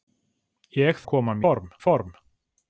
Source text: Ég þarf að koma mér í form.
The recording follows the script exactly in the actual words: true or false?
false